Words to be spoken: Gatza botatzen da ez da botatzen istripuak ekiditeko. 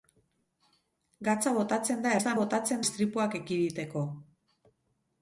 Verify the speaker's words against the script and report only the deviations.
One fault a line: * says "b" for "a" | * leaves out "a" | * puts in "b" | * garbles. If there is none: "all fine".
all fine